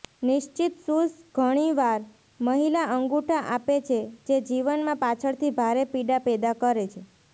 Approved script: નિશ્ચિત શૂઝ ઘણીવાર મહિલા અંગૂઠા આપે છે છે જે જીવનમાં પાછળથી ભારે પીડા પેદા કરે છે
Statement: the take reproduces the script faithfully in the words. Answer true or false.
false